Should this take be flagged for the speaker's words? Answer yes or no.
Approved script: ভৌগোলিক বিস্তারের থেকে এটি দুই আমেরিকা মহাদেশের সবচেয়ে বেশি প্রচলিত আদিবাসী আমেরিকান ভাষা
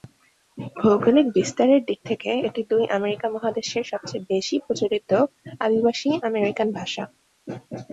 yes